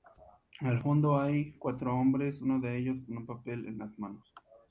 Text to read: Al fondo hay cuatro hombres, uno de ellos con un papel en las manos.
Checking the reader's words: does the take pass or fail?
pass